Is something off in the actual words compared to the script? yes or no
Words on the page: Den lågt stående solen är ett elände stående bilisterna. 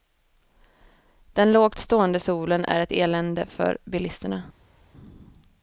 yes